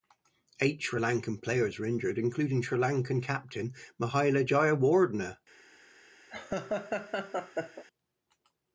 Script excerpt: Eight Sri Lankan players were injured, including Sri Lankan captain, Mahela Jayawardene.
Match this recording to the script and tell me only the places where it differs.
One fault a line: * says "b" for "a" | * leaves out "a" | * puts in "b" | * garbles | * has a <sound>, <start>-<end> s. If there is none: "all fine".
* has a laugh, 6.3-7.8 s